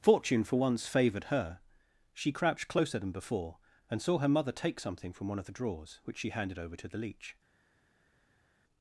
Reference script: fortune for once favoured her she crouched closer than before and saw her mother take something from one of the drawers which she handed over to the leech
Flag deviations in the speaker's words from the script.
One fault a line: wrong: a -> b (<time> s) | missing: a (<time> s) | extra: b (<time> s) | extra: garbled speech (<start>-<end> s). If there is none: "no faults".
no faults